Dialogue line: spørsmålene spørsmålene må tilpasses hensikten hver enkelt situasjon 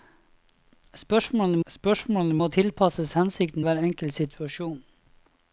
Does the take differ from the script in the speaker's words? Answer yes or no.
no